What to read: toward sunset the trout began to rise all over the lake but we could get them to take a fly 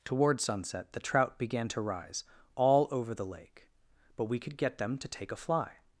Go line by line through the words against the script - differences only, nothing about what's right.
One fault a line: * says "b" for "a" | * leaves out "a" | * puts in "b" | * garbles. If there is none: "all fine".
all fine